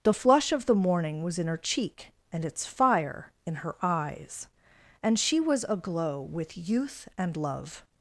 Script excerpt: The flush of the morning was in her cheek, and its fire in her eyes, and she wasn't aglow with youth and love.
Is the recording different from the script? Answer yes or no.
yes